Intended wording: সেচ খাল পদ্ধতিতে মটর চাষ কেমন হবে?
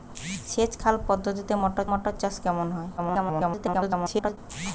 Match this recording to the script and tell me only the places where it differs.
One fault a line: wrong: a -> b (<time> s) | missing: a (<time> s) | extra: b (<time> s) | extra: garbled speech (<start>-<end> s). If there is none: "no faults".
extra: মটর (1.9 s)
extra: garbled speech (3.0-4.4 s)